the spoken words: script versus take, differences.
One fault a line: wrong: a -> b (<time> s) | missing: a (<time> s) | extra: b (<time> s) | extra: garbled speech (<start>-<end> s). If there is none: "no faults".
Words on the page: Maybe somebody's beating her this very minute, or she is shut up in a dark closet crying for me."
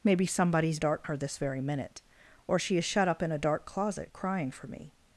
wrong: beating -> dark (0.8 s)